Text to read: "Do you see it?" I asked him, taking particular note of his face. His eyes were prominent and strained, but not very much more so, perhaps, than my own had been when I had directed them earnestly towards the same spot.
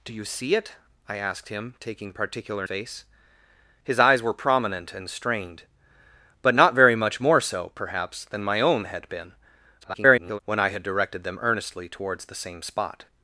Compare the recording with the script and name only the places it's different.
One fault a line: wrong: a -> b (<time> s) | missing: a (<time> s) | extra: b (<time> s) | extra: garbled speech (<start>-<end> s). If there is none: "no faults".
missing: note of his (2.6 s)
extra: garbled speech (9.8-10.4 s)